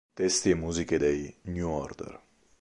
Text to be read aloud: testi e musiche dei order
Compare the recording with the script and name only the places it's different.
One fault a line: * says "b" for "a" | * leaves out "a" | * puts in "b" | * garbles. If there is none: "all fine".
* puts in "new"